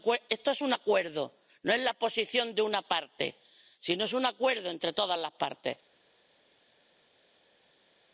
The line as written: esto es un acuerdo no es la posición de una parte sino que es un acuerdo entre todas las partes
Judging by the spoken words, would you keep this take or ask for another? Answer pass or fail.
pass